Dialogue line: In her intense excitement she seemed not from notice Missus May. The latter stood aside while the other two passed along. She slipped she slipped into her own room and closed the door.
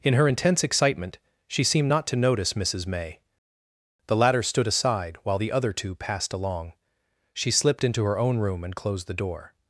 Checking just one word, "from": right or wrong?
wrong